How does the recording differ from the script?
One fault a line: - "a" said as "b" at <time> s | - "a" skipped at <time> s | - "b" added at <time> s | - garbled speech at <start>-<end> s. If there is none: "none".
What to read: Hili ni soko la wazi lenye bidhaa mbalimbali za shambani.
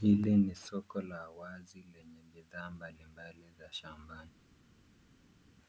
none